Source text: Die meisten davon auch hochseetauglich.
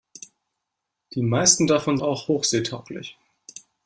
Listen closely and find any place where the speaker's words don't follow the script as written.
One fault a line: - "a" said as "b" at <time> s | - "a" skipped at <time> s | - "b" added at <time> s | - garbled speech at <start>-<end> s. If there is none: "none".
none